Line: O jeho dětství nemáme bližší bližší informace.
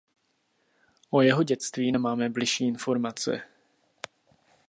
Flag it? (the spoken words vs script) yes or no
yes